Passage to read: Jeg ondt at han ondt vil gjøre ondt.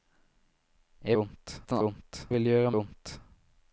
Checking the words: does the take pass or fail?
pass